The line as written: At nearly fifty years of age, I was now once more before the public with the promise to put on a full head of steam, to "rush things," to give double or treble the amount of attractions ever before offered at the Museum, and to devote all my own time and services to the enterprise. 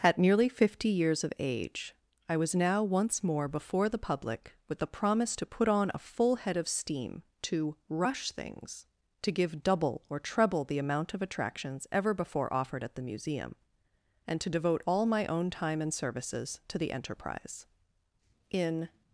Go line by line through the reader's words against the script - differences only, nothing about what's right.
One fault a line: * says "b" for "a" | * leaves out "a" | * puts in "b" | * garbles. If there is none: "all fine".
* puts in "In"